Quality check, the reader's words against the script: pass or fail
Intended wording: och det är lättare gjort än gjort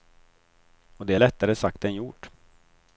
fail